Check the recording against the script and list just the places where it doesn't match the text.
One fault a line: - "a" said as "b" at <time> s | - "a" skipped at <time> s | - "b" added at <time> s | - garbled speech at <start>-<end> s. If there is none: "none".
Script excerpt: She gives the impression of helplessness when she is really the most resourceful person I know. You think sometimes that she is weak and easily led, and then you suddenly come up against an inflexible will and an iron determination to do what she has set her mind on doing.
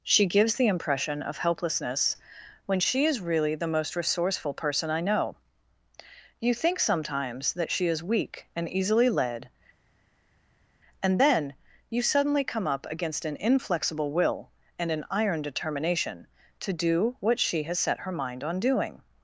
none